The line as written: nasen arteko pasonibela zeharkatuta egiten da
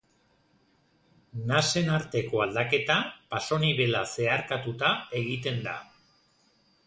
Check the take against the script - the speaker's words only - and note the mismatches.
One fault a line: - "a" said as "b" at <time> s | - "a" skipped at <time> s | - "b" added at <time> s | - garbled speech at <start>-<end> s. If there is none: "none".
- "aldaketa" added at 2.4 s